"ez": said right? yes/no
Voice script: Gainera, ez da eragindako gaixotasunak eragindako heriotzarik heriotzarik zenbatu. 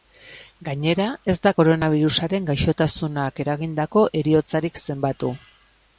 yes